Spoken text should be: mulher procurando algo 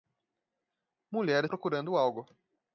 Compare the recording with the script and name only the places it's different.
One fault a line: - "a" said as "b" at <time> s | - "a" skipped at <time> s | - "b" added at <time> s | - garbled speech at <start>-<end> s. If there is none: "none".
none